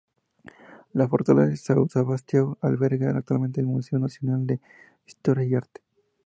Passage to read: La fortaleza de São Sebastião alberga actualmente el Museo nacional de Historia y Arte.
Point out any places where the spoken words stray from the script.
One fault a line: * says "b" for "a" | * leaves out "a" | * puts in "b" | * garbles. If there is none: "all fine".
all fine